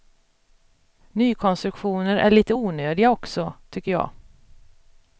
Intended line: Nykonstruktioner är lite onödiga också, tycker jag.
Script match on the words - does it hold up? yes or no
yes